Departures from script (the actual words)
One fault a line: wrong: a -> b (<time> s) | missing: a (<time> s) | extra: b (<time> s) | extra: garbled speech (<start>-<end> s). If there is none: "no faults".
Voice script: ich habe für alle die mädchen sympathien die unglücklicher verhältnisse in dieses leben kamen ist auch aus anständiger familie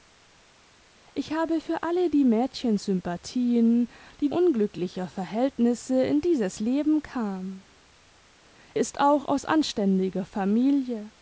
no faults